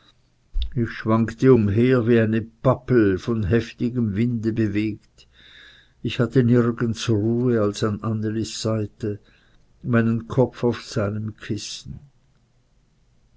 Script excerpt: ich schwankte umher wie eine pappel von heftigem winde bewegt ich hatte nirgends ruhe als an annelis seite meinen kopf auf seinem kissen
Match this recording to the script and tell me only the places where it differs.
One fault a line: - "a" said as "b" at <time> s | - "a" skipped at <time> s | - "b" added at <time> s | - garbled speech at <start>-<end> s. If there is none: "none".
none